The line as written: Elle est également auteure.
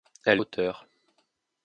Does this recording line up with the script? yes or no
no